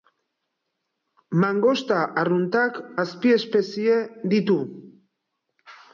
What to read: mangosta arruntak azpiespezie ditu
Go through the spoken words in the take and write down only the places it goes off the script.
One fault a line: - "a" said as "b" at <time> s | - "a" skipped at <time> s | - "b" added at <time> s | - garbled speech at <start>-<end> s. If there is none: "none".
none